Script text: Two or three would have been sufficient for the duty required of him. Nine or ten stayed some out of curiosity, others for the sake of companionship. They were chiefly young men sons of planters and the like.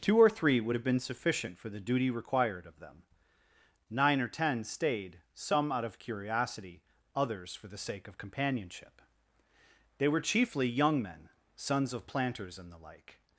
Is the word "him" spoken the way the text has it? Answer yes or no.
no